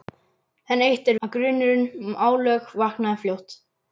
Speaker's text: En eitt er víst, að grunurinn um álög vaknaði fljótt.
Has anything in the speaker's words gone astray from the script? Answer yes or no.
yes